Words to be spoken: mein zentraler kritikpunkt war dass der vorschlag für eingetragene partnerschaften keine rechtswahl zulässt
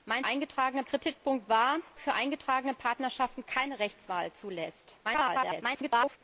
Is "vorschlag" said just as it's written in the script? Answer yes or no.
no